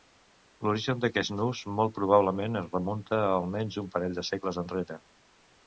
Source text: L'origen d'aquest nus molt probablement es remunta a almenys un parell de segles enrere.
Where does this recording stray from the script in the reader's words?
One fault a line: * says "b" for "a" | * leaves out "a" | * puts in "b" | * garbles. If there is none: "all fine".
all fine